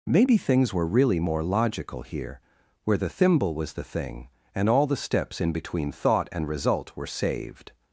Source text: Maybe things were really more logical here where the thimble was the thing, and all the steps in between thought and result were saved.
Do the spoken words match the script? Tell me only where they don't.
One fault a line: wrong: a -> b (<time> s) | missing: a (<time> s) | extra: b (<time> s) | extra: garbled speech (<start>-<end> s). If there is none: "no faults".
no faults